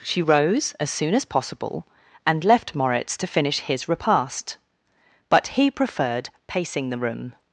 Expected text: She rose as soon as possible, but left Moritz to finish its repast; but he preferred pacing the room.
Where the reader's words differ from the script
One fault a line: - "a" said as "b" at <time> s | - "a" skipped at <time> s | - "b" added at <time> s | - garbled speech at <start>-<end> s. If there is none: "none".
- "but" said as "and" at 2.3 s
- "its" said as "his" at 3.6 s